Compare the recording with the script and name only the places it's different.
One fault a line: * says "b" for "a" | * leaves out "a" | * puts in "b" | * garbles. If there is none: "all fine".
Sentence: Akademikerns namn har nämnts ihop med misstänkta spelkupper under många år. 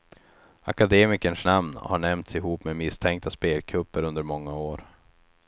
all fine